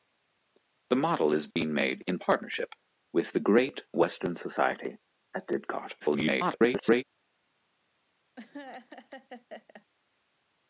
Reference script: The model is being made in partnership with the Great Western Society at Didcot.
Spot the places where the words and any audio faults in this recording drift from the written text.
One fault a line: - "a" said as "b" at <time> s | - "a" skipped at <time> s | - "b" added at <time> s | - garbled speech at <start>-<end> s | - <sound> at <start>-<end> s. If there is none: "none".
- dropout at 1.5-1.6 s
- garbled speech at 6.0-7.0 s
- laugh at 8.4-9.9 s